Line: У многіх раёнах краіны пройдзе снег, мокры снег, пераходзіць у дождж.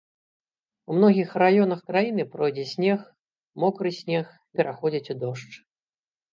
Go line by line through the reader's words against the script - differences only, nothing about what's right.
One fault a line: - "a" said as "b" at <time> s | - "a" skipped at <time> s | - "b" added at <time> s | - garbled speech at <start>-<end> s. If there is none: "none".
none